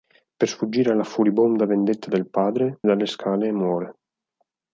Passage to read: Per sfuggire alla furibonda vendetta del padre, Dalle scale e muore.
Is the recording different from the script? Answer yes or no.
no